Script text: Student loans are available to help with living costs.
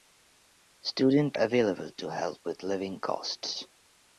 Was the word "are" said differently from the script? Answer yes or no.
yes